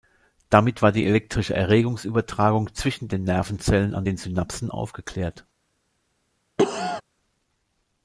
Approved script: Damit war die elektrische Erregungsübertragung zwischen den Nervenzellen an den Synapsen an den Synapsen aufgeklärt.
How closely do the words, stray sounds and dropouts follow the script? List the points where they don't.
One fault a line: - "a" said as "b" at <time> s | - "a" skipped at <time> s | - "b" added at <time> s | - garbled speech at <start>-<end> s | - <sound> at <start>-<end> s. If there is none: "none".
- "an den Synapsen" skipped at 4.7 s
- cough at 6.6-7.0 s